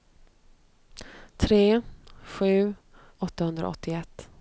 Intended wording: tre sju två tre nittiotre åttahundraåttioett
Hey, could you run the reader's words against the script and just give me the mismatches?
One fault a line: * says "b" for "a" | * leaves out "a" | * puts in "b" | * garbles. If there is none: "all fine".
* leaves out "två tre nittiotre"